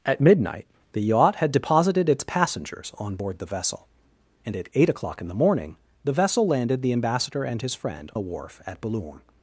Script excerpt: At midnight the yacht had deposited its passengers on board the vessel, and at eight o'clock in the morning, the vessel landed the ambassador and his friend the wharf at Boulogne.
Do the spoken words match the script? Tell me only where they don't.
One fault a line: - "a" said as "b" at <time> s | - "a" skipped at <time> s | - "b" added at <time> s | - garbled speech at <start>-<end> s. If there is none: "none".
none